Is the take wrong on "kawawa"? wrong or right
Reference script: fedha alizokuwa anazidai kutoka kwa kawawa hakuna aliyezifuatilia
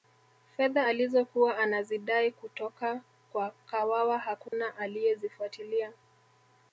right